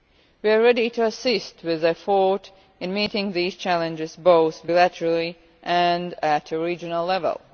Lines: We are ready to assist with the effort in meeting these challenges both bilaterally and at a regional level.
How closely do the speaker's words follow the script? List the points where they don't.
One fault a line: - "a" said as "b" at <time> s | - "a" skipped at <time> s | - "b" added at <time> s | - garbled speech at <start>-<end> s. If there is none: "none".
none